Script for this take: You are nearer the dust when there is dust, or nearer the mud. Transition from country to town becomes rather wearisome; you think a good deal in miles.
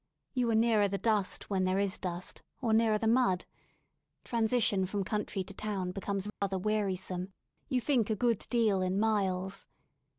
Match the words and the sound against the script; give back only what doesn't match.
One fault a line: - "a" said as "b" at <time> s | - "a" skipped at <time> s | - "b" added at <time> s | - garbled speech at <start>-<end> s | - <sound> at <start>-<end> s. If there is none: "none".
- dropout at 6.3-6.4 s